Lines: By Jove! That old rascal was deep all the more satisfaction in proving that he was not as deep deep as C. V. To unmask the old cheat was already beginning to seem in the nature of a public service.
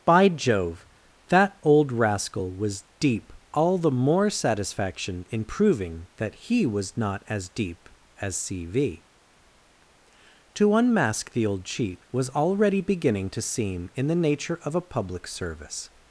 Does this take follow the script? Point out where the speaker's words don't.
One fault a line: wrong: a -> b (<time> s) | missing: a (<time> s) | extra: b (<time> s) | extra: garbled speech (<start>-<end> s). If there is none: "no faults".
missing: deep (7.9 s)